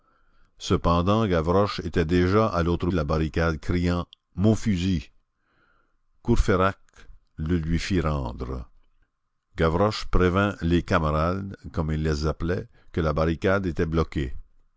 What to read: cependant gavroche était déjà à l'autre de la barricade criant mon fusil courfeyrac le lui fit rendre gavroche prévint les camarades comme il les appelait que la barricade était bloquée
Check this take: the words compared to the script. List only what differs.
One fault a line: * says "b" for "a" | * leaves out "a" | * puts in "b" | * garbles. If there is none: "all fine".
all fine